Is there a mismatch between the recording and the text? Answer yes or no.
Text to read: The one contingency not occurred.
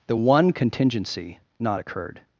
no